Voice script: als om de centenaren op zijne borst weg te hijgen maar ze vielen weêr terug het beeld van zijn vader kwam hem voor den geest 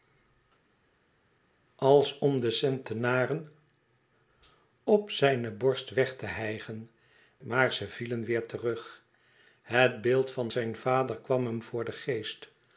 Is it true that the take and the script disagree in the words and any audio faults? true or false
false